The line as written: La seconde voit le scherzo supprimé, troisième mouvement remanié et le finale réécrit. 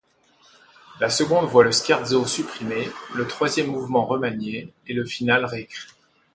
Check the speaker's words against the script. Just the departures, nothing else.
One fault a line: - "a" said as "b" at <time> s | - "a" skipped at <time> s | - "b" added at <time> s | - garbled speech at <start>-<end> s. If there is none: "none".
- "le" added at 3.2 s